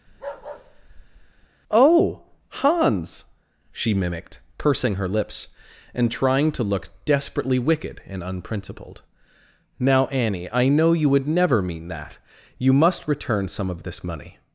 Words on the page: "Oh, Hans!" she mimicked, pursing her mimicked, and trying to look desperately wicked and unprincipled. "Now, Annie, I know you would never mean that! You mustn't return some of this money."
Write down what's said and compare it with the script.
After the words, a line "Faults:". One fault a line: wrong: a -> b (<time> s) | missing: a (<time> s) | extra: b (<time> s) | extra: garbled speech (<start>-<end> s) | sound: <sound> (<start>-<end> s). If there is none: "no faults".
"Oh, Hans!" she mimicked, pursing her lips, and trying to look desperately wicked and unprincipled. "Now, Annie, I know you would never mean that! You must return some of this money."
Faults:
sound: bark (0.1-1.5 s)
wrong: mimicked -> lips (5.1 s)
wrong: mustn't -> must (12.7 s)